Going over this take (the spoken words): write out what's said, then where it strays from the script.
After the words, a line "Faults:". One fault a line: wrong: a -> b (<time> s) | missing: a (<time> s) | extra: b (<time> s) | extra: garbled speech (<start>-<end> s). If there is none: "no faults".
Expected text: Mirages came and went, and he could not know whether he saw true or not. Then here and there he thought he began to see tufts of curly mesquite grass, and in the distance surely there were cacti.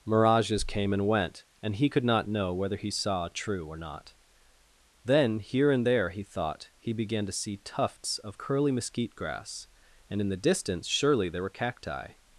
Mirages came and went, and he could not know whether he saw true or not. Then here and there he thought he began to see tufts of curly mesquite grass, and in the distance surely there were cacti.
Faults:
no faults